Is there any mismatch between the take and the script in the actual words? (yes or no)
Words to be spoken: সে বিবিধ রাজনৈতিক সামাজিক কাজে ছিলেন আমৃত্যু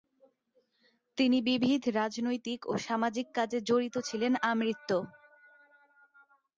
yes